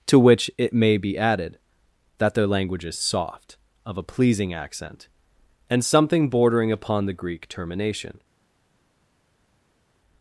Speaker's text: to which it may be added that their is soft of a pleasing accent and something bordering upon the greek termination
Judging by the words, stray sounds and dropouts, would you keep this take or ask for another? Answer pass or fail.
fail